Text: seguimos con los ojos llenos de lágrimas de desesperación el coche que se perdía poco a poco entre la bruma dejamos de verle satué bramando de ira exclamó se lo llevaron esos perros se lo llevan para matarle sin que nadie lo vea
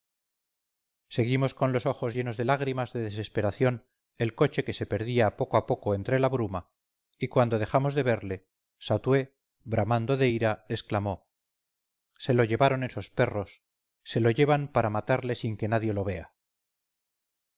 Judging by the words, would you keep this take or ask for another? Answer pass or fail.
fail